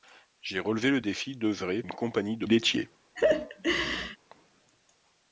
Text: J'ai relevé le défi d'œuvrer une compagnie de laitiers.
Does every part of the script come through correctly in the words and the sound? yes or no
no